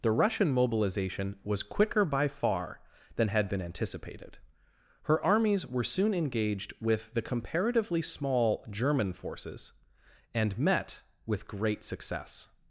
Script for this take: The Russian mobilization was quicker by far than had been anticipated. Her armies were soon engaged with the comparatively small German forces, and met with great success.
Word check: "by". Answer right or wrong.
right